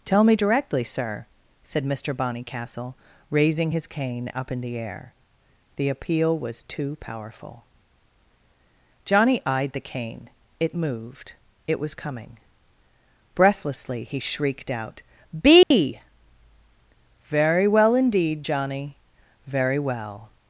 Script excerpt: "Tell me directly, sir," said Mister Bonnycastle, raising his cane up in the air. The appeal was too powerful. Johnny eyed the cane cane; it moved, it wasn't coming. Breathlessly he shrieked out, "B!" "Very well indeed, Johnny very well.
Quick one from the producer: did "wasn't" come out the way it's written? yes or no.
no